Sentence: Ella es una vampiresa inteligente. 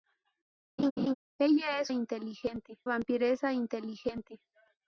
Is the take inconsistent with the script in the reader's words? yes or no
yes